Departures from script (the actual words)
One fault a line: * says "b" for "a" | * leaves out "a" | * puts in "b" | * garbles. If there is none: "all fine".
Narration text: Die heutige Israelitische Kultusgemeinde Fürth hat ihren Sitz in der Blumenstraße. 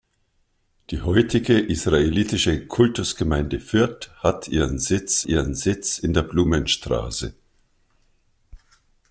* puts in "ihren Sitz"